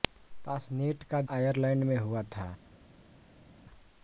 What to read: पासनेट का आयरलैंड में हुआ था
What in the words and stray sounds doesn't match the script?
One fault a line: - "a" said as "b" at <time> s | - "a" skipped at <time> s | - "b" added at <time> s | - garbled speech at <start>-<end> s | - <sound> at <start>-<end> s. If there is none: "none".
none